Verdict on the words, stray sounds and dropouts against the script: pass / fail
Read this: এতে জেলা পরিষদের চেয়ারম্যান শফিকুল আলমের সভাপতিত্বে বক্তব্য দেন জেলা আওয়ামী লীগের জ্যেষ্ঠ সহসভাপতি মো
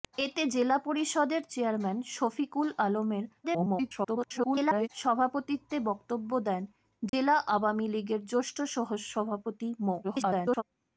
fail